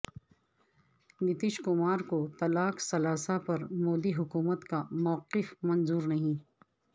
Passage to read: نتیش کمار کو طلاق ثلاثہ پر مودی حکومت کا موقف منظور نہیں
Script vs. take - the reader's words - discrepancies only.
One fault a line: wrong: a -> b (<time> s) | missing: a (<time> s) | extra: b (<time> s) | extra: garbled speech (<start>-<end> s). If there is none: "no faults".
no faults